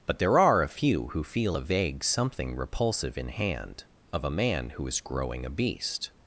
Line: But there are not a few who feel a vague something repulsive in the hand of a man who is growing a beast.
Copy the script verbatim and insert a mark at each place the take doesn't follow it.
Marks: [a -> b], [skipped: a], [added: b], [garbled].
But there are [skipped: not] a few who feel a vague something repulsive in [skipped: the] hand of a man who is growing a beast.